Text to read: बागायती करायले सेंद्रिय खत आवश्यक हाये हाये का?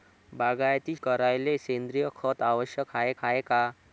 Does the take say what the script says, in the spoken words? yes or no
yes